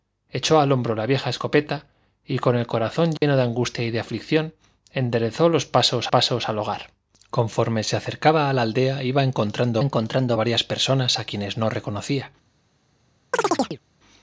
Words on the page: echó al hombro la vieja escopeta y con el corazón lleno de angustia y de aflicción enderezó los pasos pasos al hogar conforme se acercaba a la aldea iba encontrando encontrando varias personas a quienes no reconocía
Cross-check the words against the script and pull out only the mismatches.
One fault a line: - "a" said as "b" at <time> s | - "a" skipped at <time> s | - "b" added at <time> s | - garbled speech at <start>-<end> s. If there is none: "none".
none